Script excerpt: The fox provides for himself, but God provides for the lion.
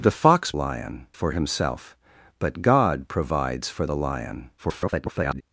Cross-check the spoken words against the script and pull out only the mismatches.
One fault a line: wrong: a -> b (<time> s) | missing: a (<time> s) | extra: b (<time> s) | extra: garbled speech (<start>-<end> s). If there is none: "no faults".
wrong: provides -> lion (0.5 s)
extra: garbled speech (4.6-5.4 s)